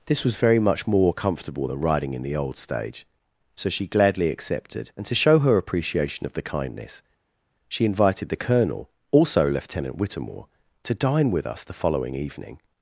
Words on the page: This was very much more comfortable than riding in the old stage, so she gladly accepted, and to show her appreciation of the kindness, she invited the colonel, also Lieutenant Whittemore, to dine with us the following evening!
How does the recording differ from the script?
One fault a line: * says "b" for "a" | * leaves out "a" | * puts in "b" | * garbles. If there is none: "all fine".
all fine